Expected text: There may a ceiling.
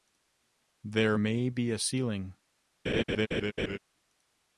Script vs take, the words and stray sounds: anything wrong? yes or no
yes